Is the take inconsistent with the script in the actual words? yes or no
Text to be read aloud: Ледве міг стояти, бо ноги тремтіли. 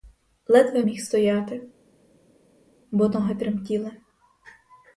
no